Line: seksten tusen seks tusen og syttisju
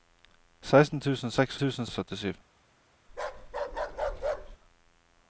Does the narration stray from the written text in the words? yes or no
no